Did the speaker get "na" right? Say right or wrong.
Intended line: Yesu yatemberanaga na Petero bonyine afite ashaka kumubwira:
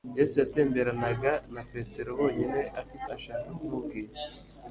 right